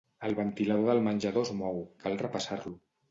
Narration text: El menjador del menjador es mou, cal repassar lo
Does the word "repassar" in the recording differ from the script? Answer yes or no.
no